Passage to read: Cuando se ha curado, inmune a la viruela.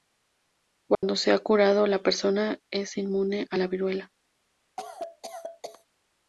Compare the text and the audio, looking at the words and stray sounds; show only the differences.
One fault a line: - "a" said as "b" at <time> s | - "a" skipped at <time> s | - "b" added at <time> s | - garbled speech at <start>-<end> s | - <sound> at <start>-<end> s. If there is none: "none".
- dropout at 0.9-1.0 s
- "la persona es" added at 1.9 s
- cough at 4.8-5.9 s